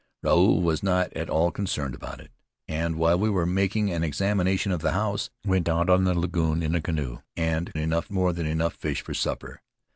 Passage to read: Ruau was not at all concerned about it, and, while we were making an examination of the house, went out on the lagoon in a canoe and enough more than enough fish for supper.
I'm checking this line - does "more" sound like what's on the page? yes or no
yes